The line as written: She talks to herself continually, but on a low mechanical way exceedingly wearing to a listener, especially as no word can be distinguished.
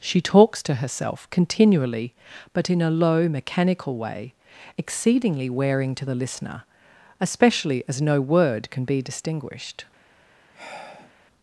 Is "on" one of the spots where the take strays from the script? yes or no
yes